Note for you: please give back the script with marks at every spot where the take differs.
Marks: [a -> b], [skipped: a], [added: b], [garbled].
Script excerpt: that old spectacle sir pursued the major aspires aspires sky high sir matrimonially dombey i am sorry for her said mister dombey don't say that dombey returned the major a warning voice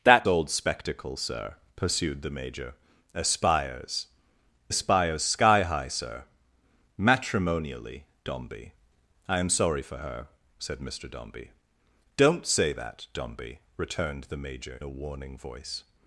that old spectacle sir pursued the major aspires aspires sky high sir matrimonially dombey i am sorry for her said mister dombey don't say that dombey returned the major a warning voice